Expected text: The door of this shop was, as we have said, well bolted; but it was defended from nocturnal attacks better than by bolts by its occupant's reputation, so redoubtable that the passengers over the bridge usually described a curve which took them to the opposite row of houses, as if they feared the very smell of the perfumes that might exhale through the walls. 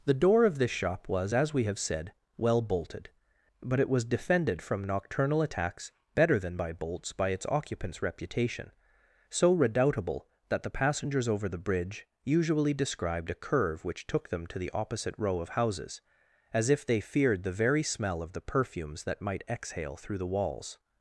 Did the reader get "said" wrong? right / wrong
right